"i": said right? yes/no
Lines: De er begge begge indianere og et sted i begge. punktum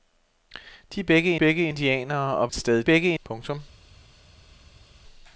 yes